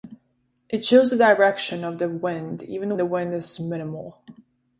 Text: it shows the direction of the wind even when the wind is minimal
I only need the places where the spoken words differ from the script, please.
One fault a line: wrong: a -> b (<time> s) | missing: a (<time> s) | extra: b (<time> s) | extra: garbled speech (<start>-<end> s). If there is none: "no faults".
missing: when (3.0 s)